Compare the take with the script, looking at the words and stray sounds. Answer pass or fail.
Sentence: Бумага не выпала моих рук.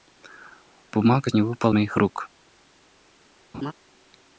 fail